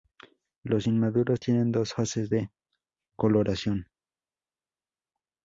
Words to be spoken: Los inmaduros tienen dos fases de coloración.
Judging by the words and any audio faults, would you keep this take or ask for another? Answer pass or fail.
pass